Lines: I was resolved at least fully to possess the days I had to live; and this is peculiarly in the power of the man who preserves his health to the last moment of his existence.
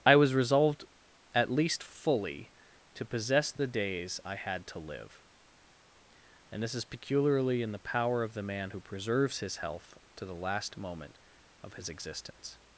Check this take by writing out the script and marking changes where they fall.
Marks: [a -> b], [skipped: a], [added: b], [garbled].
I was resolved at least fully to possess the days I had to live; and this is peculiarly in the power of the man who preserves his health to the last moment of his existence.